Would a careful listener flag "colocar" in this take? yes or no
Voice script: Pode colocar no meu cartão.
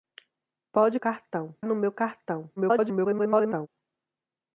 yes